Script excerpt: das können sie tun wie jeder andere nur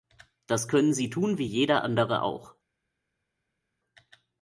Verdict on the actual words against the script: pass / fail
fail